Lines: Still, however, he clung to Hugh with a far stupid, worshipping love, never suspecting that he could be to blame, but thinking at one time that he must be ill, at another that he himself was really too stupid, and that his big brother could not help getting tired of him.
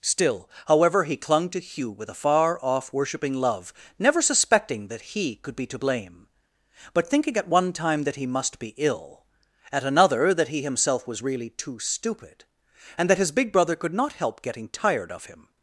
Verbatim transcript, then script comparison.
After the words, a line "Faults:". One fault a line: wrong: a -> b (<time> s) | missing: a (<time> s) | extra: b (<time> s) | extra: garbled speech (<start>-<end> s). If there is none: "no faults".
Still, however, he clung to Hugh with a far off, worshipping love, never suspecting that he could be to blame, but thinking at one time that he must be ill, at another that he himself was really too stupid, and that his big brother could not help getting tired of him.
Faults:
wrong: stupid -> off (2.6 s)